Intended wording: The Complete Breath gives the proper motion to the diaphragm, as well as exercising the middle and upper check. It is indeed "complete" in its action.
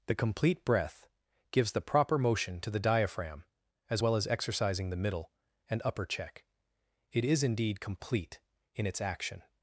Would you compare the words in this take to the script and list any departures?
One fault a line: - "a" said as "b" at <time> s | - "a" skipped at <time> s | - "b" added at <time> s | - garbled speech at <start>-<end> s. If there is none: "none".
none